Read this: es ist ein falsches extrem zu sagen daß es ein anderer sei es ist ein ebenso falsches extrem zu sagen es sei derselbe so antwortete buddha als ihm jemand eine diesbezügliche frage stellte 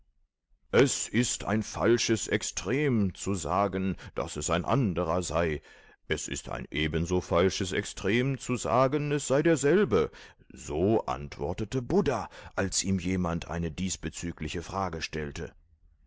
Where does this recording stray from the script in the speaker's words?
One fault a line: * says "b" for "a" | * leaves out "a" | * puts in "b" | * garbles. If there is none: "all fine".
all fine